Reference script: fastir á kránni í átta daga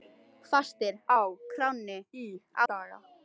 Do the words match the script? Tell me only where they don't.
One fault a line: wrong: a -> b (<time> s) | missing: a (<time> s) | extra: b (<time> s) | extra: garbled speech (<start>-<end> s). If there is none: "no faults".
missing: átta (2.3 s)